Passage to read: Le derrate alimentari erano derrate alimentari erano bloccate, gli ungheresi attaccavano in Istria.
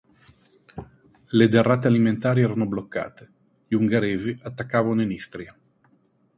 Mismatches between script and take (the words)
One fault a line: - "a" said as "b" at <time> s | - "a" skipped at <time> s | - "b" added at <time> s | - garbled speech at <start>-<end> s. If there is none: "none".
- "derrate alimentari erano" skipped at 2.6 s